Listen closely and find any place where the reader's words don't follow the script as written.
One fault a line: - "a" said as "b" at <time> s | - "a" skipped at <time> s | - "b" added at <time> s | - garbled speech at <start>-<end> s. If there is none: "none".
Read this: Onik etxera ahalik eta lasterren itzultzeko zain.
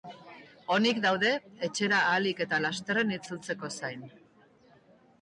- "daude" added at 1.0 s